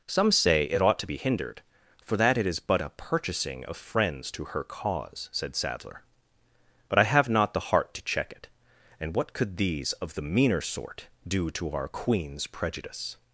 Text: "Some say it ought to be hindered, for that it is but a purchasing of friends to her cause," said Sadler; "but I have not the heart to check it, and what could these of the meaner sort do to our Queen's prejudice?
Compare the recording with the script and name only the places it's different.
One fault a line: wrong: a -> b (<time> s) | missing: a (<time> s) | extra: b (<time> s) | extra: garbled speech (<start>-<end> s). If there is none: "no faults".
no faults